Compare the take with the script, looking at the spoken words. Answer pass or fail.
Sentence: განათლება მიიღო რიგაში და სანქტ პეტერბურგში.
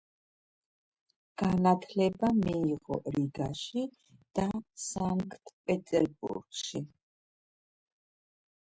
pass